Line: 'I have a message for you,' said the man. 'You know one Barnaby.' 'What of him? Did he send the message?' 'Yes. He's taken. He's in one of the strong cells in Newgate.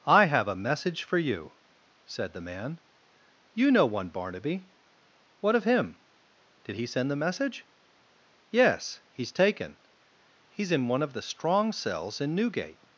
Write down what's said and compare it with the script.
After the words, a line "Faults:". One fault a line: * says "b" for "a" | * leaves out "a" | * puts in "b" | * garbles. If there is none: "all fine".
'I have a message for you,' said the man. 'You know one Barnaby.' 'What of him? Did he send the message?' 'Yes. He's taken. He's in one of the strong cells in Newgate.
Faults:
all fine